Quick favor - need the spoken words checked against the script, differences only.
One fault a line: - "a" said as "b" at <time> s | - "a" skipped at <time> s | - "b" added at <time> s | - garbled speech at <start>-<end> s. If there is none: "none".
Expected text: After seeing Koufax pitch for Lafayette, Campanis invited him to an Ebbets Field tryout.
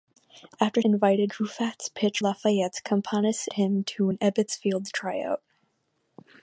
- "seeing" said as "invited" at 0.8 s
- "for" skipped at 2.2 s
- "invited" skipped at 3.5 s